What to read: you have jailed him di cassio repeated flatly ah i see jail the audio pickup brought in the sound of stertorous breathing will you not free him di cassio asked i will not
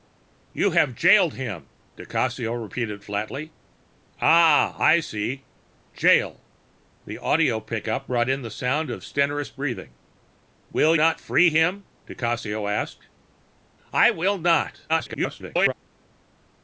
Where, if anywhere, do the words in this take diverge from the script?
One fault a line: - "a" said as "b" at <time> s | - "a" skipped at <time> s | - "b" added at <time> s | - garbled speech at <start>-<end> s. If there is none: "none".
- "you" skipped at 10.9 s
- garbled speech at 14.9-15.7 s